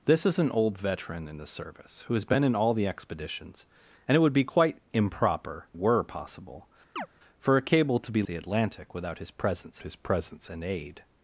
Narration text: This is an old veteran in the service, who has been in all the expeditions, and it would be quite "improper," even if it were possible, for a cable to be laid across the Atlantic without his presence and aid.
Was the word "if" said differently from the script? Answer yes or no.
yes